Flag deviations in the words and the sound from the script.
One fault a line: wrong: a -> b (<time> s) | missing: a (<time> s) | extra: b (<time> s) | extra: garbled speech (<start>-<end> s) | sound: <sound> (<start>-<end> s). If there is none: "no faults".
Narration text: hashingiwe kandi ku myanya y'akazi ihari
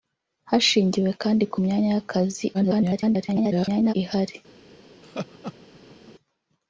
extra: garbled speech (2.5-3.9 s)
sound: laugh (5.0-6.1 s)